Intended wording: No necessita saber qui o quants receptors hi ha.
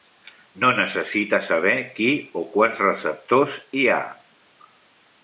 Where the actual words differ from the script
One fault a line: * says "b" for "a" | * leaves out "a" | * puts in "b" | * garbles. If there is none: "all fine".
all fine